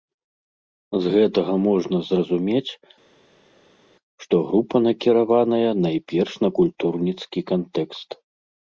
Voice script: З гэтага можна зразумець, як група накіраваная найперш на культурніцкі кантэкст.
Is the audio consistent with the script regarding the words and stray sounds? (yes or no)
no